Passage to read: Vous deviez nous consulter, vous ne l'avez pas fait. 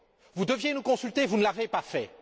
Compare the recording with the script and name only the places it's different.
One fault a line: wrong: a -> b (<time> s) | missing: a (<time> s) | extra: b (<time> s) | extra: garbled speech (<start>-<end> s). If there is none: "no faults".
no faults